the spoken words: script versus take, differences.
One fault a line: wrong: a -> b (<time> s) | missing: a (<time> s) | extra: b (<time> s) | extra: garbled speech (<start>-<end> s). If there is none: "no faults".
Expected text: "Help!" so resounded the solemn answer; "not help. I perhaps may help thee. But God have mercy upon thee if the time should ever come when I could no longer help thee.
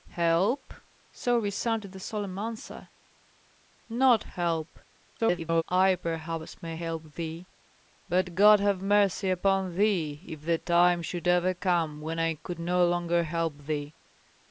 extra: garbled speech (5.2-5.6 s)